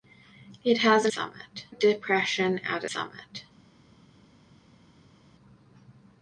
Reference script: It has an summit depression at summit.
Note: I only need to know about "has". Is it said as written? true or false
true